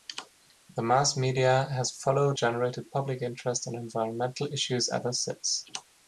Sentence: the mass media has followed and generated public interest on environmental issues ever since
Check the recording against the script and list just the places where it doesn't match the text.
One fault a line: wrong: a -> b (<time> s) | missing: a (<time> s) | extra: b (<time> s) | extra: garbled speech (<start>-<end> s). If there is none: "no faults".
missing: and (2.4 s)